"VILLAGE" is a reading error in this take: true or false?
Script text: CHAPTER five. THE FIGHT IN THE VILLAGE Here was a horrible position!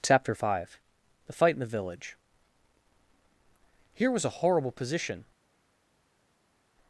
false